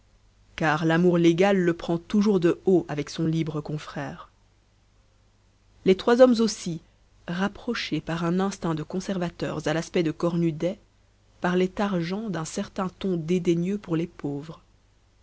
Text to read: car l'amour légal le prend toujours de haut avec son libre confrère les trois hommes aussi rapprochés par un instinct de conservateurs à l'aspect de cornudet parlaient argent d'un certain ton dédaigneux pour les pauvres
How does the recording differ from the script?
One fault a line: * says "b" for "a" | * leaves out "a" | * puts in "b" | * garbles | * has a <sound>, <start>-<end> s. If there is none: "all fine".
all fine